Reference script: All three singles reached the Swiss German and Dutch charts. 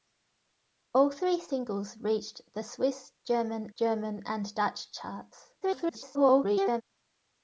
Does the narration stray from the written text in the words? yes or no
yes